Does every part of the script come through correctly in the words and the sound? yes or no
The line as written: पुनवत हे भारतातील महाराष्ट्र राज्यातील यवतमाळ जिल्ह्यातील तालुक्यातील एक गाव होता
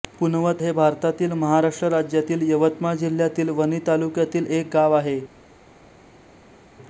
no